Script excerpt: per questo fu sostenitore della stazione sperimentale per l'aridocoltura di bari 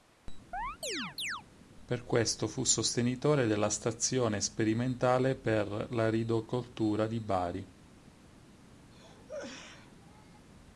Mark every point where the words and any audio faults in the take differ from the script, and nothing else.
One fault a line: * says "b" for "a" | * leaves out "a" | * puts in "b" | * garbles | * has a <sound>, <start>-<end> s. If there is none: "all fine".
* has a chirp, 0.5-1.4 s
* has a cough, 8.9-10.5 s